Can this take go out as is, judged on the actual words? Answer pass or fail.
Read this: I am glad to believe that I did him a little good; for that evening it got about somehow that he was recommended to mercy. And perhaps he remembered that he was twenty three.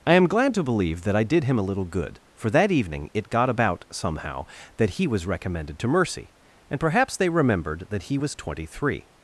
fail